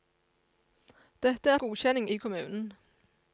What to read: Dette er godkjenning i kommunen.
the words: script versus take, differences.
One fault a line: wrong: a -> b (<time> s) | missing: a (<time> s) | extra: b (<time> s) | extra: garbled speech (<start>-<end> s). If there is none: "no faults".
no faults